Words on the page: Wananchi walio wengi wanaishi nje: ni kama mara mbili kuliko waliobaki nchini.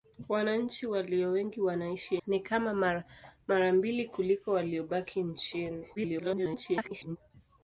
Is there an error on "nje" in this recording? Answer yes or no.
yes